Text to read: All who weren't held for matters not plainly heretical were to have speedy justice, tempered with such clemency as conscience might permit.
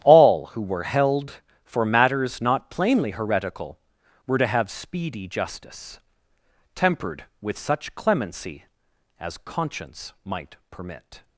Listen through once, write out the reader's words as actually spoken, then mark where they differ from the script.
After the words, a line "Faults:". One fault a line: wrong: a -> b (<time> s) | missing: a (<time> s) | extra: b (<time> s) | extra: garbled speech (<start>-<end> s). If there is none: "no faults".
All who were held for matters not plainly heretical were to have speedy justice, tempered with such clemency as conscience might permit.
Faults:
wrong: weren't -> were (0.6 s)